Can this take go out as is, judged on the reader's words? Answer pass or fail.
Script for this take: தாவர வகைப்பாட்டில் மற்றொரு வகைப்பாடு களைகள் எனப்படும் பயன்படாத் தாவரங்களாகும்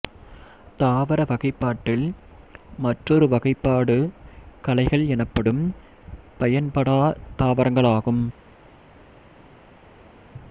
pass